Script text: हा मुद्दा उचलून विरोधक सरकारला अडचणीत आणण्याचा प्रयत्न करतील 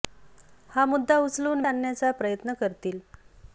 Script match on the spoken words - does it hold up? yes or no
no